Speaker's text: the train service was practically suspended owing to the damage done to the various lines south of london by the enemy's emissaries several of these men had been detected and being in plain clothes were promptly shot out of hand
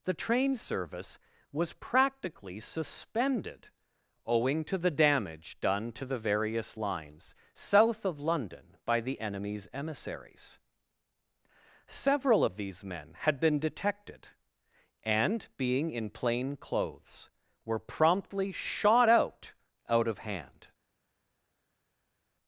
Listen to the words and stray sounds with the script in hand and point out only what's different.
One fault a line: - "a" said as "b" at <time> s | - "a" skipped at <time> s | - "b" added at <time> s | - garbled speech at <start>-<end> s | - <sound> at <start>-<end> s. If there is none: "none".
- "out" added at 19.9 s